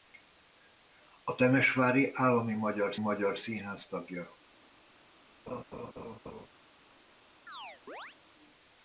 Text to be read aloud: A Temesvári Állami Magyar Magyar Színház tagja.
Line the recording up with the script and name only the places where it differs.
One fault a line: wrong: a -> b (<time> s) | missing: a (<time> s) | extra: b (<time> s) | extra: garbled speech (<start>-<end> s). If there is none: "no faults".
no faults